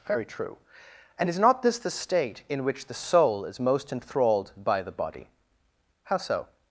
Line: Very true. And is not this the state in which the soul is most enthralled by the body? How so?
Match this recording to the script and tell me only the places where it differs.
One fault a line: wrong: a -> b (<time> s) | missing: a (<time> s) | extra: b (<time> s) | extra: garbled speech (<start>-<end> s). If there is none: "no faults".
no faults